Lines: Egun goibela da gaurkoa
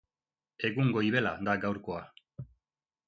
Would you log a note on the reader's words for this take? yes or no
no